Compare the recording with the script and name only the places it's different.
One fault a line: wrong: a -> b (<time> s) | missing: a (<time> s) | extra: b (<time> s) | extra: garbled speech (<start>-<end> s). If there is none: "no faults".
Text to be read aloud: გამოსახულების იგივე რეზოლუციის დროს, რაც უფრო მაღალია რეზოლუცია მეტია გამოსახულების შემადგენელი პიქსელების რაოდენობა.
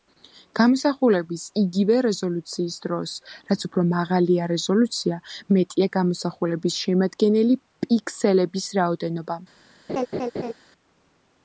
no faults